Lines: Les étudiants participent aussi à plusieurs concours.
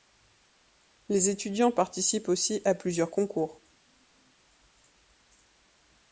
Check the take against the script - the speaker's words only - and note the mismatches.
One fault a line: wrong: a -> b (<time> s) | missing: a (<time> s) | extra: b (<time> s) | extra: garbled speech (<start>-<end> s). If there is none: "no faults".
no faults